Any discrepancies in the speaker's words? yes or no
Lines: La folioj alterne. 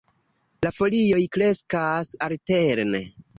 yes